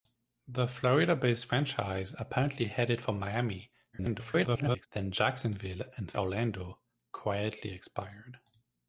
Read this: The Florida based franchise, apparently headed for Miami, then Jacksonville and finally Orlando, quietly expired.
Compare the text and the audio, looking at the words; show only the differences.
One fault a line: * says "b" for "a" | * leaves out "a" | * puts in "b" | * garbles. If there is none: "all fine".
* garbles
* leaves out "finally"